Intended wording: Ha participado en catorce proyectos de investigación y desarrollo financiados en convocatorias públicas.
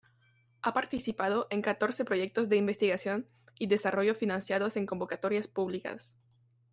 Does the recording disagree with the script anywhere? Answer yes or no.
no